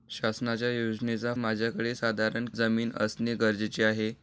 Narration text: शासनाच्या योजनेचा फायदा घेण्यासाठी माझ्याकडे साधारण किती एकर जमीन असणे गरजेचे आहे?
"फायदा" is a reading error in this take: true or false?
true